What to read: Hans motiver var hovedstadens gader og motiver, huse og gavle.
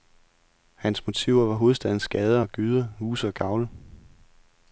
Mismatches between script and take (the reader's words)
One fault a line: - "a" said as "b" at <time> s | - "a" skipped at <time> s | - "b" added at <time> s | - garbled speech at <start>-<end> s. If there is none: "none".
- "motiver" said as "gyder" at 2.5 s